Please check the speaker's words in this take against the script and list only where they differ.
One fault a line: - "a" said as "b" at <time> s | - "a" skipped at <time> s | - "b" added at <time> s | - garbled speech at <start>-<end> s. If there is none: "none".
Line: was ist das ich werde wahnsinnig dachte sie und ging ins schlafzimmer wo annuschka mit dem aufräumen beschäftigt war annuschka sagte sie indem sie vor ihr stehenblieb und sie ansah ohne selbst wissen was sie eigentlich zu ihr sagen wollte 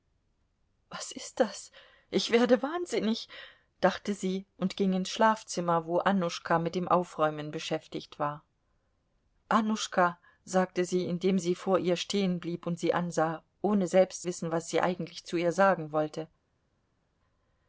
none